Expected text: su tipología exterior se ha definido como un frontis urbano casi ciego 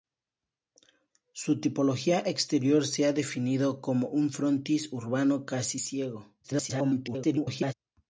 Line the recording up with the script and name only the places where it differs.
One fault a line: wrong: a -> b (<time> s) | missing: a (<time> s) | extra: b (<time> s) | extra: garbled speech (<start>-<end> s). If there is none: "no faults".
extra: garbled speech (6.4-7.7 s)